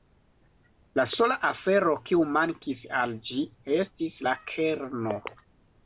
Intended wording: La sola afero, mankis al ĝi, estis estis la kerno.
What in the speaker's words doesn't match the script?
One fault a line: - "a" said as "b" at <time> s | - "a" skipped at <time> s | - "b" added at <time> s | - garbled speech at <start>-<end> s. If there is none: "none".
- "kiu" added at 2.1 s
- "estis" skipped at 4.2 s